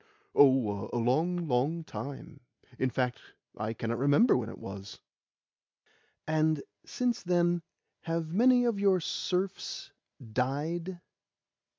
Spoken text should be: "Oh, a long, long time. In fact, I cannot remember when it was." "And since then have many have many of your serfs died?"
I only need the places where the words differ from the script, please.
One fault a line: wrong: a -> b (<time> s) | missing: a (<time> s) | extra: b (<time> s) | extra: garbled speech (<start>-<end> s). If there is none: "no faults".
missing: have many (8.6 s)